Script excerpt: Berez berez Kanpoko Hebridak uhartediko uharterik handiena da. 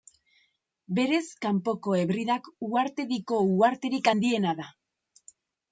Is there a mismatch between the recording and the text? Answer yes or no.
yes